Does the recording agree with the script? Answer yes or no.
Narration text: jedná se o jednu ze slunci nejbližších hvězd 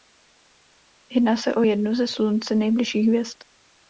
yes